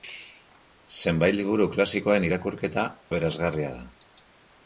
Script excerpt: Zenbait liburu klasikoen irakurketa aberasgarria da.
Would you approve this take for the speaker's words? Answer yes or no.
yes